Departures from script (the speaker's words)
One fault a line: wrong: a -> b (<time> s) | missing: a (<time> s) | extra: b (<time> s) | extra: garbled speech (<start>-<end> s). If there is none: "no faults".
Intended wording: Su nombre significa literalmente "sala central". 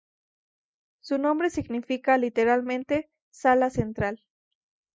no faults